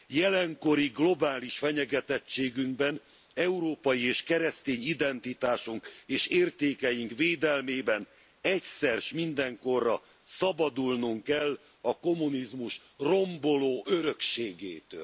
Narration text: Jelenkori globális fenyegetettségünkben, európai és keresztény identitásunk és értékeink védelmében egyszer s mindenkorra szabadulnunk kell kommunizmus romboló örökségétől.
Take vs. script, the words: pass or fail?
fail